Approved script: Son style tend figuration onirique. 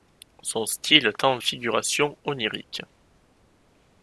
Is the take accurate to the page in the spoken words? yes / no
yes